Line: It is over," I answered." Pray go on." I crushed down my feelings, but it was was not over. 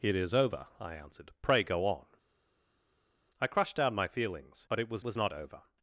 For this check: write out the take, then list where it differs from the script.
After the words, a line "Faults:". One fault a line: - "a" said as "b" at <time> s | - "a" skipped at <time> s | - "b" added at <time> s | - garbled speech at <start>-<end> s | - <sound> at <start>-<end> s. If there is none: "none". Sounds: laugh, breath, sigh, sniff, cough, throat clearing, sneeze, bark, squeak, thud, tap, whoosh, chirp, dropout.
It is over," I answered." Pray go on." I crushed down my feelings, but it was was not over.
Faults:
none